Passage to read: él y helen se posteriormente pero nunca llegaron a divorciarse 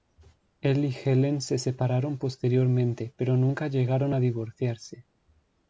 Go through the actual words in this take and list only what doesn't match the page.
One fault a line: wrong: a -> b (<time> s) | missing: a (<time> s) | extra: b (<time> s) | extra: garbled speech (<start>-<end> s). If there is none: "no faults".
extra: separaron (1.6 s)